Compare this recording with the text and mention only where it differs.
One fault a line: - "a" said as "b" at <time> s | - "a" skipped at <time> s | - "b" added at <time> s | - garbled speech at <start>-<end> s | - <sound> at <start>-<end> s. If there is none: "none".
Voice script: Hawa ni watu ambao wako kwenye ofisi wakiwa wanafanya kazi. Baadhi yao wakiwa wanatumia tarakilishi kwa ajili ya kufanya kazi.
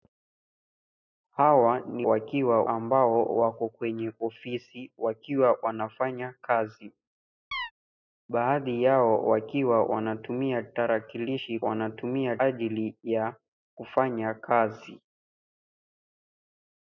- "watu" said as "wakiwa" at 2.0 s
- chirp at 7.5-7.7 s
- "kwa" said as "wanatumia" at 11.6 s